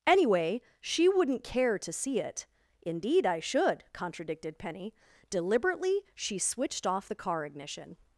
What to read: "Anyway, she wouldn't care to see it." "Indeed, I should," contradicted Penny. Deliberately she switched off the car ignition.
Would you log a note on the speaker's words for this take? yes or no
no